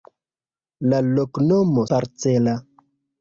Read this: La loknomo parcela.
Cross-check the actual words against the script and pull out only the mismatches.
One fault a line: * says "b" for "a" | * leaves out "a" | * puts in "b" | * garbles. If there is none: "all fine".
all fine